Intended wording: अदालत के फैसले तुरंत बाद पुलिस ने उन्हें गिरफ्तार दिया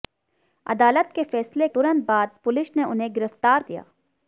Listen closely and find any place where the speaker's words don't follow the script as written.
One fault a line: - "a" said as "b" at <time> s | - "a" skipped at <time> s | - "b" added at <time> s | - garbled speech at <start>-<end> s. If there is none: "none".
none